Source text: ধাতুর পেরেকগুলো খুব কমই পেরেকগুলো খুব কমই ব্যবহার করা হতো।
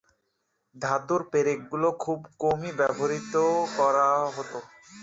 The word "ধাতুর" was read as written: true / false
true